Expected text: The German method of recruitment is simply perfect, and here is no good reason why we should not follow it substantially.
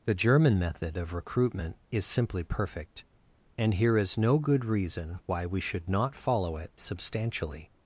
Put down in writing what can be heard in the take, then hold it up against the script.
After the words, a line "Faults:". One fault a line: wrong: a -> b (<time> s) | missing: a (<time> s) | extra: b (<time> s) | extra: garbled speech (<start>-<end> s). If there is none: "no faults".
The German method of recruitment is simply perfect, and here is no good reason why we should not follow it substantially.
Faults:
no faults